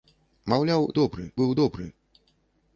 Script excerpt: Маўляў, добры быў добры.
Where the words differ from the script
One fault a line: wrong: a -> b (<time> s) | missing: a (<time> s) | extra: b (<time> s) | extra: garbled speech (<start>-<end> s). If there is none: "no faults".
no faults